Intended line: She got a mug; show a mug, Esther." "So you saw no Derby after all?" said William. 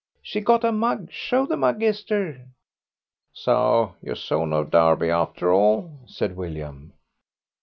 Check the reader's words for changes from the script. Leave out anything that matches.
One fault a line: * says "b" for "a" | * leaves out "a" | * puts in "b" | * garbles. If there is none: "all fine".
* says "the" for "a"